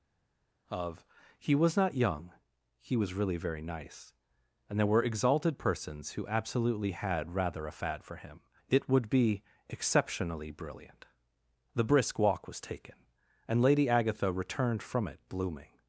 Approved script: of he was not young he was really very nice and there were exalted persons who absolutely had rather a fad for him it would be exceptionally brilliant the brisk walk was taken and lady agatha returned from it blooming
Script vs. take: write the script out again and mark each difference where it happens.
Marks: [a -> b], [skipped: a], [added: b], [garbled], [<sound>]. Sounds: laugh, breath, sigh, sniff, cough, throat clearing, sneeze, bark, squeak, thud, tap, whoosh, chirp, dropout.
of he was not young he was really very nice and there were exalted persons who absolutely had rather a fad for him it would be exceptionally brilliant the brisk walk was taken and lady agatha returned from it blooming